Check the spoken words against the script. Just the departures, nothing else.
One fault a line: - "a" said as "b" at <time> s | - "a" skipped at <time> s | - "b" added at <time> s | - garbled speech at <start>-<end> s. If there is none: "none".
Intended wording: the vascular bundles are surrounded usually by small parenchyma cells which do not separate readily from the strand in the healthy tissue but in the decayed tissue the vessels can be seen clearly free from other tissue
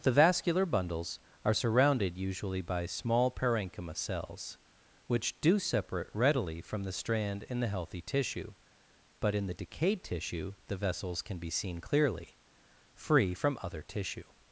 - "not" skipped at 5.6 s